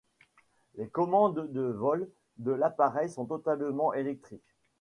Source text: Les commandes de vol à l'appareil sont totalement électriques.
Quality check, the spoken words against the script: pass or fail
fail